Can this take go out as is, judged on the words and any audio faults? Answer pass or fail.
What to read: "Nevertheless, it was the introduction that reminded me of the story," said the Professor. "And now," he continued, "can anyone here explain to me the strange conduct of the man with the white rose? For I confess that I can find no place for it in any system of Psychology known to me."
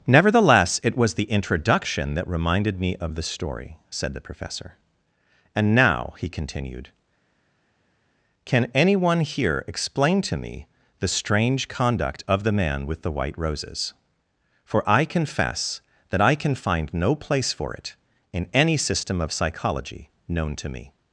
fail